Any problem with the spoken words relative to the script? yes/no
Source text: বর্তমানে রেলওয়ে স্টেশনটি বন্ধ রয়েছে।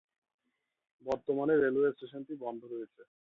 no